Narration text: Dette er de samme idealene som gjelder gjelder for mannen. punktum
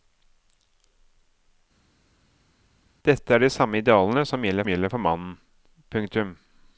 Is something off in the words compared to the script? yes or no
no